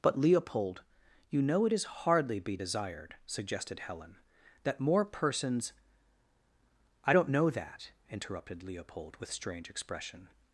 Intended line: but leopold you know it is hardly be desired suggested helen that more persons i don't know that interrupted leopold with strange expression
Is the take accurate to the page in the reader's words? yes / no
yes